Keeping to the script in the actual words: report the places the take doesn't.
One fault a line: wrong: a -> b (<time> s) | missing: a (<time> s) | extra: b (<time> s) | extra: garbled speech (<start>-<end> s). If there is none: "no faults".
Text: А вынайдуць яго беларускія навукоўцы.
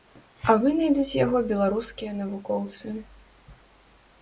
no faults